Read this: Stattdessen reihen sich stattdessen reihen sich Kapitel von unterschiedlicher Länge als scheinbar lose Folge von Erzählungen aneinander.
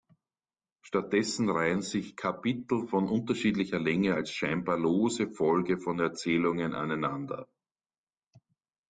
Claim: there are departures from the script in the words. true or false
true